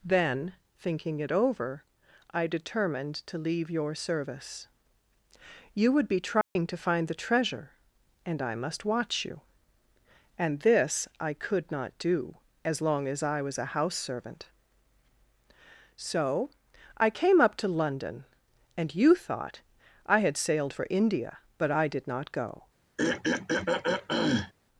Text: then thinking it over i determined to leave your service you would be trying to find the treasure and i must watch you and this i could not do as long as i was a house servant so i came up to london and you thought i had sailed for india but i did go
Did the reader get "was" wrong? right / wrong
right